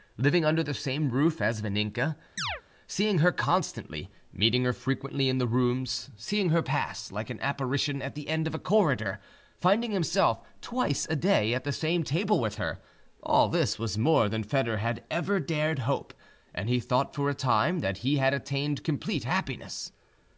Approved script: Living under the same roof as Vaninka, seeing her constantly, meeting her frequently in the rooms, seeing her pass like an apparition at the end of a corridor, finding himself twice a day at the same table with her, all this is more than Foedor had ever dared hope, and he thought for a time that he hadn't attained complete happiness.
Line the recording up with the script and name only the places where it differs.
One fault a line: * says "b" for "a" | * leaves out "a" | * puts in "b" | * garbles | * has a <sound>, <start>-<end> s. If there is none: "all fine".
* has a chirp, 2.4-2.6 s
* says "was" for "is"
* says "had" for "hadn't"